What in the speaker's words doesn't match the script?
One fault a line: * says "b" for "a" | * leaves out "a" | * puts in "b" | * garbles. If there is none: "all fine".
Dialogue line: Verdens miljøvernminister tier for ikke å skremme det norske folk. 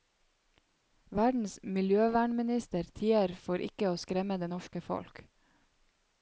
all fine